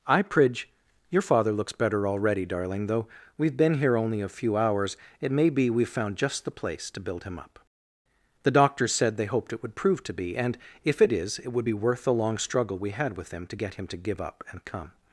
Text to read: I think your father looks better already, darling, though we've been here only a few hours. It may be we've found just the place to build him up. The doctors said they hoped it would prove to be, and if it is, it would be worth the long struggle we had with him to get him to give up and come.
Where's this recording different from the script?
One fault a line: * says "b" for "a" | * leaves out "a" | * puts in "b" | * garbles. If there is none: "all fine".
* says "pridge" for "think"